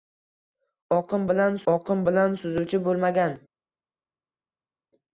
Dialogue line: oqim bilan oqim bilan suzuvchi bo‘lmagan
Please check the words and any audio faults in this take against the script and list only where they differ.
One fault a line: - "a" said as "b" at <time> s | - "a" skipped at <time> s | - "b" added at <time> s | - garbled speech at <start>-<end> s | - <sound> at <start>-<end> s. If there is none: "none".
none